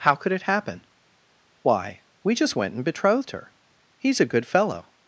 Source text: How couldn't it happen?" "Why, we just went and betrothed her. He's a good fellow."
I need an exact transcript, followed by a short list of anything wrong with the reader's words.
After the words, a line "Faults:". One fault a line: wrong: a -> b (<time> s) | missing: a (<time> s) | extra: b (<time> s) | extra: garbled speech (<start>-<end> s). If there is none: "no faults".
How could it happen?" "Why, we just went and betrothed her. He's a good fellow."
Faults:
wrong: couldn't -> could (0.1 s)